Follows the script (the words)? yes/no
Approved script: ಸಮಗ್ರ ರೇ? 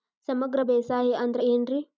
no